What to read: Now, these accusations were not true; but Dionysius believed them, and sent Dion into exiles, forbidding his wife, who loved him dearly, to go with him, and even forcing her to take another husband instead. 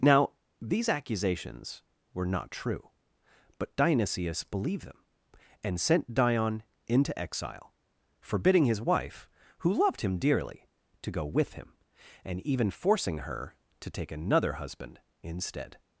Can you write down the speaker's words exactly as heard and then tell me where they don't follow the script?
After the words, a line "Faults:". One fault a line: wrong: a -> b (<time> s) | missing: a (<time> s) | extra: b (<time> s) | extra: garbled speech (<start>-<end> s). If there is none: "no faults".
Now, these accusations were not true; but Dionysius believed them, and sent Dion into exile, forbidding his wife, who loved him dearly, to go with him, and even forcing her to take another husband instead.
Faults:
wrong: exiles -> exile (7.2 s)